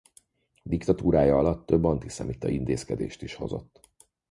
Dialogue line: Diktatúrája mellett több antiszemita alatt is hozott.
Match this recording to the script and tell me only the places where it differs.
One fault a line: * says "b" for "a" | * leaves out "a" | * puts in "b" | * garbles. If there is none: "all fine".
* says "alatt" for "mellett"
* says "intézkedést" for "alatt"